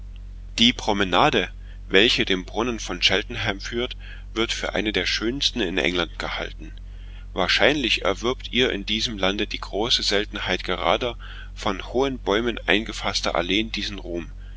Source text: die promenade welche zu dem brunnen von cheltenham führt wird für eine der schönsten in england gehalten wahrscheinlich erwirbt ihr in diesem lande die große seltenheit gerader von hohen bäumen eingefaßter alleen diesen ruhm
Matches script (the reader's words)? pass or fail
fail